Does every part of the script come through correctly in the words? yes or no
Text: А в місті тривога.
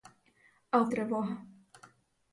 no